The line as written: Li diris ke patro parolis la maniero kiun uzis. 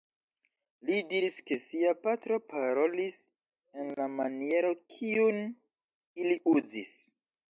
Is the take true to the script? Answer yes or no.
no